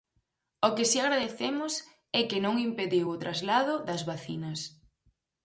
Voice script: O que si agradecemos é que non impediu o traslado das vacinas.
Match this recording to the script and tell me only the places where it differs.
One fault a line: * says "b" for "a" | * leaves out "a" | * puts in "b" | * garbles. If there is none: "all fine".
all fine